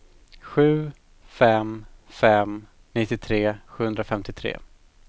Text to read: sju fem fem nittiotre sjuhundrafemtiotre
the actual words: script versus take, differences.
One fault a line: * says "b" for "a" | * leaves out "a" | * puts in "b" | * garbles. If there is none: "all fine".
all fine